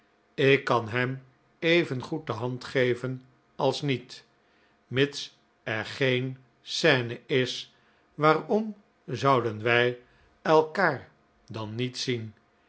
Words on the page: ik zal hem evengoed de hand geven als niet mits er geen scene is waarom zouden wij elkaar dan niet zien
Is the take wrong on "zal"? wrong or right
wrong